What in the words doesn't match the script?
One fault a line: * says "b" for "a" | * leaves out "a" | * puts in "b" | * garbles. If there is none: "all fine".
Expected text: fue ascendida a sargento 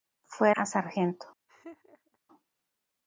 * leaves out "ascendida"